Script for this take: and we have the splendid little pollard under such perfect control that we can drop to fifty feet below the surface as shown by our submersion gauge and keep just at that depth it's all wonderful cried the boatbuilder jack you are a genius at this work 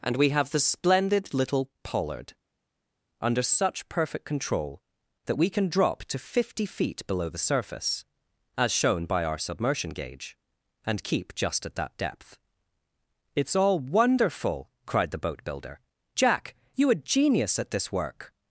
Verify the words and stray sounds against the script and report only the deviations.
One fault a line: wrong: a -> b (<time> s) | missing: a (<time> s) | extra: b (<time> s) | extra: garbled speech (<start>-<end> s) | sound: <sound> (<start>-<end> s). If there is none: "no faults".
missing: are (16.9 s)